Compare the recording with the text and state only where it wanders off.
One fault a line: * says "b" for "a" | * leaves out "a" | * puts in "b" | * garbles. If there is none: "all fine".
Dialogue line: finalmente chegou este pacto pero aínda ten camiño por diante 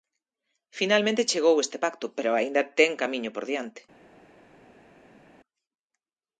all fine